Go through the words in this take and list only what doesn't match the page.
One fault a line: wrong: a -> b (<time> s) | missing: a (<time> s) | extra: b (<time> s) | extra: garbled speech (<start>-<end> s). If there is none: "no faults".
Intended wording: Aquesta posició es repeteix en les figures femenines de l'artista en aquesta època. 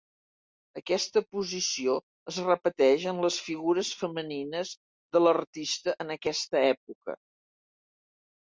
no faults